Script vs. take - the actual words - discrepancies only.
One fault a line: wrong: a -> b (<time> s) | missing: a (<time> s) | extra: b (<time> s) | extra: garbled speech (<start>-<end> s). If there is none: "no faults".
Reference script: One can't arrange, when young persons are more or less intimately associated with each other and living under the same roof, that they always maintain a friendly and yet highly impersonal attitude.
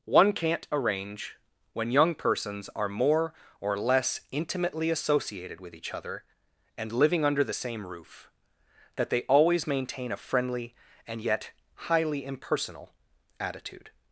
no faults